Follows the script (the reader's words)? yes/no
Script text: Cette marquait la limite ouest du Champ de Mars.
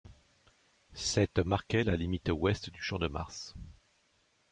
yes